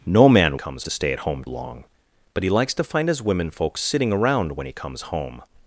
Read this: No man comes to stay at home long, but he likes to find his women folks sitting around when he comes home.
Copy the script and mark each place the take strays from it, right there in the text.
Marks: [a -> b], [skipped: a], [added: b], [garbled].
No man comes to stay at home long, but he likes to find his women folks sitting around when he comes home.